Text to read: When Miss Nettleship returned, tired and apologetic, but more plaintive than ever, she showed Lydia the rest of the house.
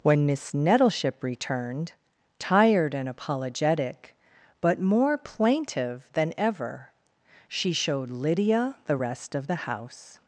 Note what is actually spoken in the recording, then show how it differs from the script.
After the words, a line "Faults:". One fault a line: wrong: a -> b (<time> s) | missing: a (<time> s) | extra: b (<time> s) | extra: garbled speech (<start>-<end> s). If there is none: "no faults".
When Miss Nettleship returned, tired and apologetic, but more plaintive than ever, she showed Lydia the rest of the house.
Faults:
no faults